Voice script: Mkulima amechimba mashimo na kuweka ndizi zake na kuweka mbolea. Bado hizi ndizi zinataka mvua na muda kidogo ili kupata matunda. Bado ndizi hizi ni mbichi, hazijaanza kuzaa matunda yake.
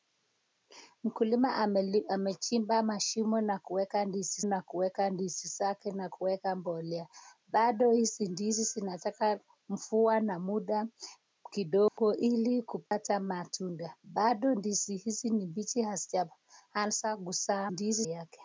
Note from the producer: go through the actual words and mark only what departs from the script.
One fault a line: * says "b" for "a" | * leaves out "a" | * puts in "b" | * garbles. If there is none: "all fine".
* puts in "na kuweka ndizi"
* says "ndizi" for "matunda"